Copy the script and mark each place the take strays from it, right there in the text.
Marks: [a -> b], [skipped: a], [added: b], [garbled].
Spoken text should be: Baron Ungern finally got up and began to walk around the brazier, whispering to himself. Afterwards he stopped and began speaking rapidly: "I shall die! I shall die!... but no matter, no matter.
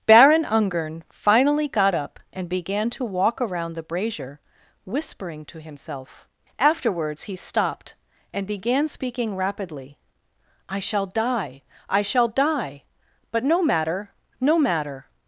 Baron Ungern finally got up and began to walk around the brazier, whispering to himself. Afterwards he stopped and began speaking rapidly: "I shall die! I shall die!... but no matter, no matter.